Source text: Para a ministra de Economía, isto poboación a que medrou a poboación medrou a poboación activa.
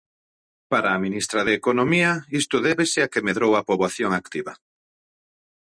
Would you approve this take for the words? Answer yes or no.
no